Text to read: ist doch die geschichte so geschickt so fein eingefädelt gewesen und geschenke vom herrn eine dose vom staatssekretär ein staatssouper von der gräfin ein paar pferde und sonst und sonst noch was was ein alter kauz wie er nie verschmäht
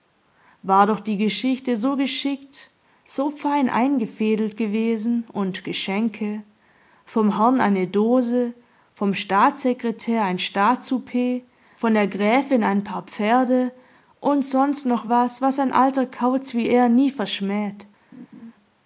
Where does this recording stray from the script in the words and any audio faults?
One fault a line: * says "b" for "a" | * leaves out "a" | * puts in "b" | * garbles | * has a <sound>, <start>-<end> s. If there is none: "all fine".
* says "war" for "ist"
* leaves out "und sonst"
* has a laugh, 18.1-18.5 s